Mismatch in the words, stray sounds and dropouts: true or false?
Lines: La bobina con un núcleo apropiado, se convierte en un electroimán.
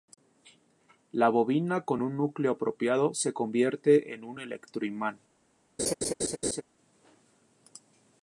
true